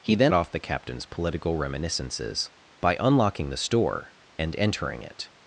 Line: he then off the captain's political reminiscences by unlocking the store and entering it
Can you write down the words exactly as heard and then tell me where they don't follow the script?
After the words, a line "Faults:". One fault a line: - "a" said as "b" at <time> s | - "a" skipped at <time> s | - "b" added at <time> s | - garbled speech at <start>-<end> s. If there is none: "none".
he then off the captain's political reminiscences by unlocking the store and entering it
Faults:
none